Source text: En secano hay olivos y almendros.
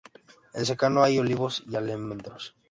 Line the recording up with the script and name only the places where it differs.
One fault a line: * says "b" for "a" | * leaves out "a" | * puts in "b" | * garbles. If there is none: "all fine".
all fine